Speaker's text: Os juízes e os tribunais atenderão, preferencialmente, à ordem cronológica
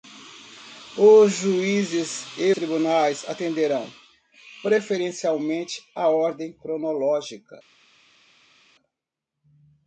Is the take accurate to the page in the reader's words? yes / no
no